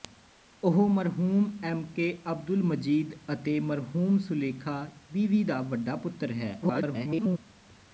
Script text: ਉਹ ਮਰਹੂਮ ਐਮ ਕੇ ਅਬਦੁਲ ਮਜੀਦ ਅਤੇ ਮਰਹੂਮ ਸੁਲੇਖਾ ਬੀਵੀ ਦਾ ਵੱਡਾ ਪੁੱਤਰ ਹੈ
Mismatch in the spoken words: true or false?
true